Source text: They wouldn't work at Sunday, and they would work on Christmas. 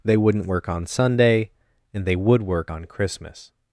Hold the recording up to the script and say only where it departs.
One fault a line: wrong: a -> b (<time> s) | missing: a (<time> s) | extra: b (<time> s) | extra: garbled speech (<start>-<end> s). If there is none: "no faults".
wrong: at -> on (0.7 s)